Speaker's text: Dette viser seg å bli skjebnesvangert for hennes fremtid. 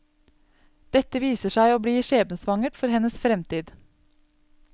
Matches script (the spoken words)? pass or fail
pass